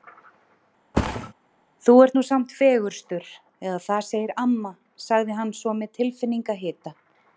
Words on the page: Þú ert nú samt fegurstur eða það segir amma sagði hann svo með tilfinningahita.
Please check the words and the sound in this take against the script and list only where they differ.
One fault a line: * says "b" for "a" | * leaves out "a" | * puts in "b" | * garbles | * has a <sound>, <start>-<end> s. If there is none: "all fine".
* has a thud, 0.9-1.3 s